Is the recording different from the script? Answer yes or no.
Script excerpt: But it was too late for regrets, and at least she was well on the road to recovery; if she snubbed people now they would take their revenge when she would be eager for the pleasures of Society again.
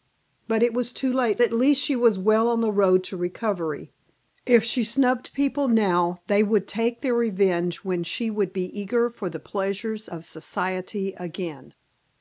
yes